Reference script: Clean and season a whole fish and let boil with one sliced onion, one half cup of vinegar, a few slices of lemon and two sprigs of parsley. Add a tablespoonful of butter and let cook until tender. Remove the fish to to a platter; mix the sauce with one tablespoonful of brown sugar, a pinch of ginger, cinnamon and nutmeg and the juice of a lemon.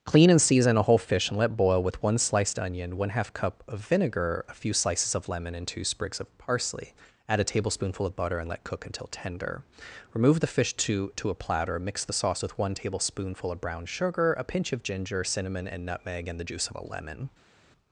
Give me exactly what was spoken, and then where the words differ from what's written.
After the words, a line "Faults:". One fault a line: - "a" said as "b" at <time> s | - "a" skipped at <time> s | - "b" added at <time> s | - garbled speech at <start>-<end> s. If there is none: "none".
Clean and season a whole fish and let boil with one sliced onion, one half cup of vinegar, a few slices of lemon and two sprigs of parsley. Add a tablespoonful of butter and let cook until tender. Remove the fish to to a platter; mix the sauce with one tablespoonful of brown sugar, a pinch of ginger, cinnamon and nutmeg and the juice of a lemon.
Faults:
none